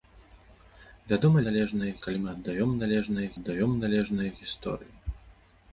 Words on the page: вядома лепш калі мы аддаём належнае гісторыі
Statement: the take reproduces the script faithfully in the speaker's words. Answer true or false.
false